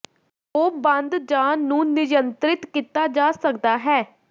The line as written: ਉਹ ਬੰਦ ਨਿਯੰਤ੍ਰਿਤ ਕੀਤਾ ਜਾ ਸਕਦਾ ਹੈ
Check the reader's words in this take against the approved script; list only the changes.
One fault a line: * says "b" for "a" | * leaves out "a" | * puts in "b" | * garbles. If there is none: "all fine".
* puts in "ਜ ਨੂੰ"